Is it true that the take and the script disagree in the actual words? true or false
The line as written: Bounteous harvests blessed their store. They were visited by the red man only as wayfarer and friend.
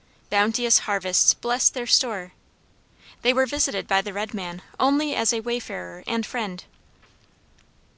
true